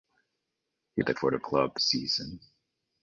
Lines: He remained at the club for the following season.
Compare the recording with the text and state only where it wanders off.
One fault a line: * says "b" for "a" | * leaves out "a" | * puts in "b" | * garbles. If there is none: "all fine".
* leaves out "remained"
* leaves out "club"
* says "club" for "following"